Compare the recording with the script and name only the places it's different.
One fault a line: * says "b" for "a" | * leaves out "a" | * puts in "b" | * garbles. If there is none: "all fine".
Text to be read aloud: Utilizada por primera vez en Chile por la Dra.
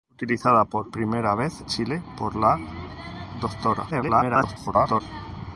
* leaves out "en"
* garbles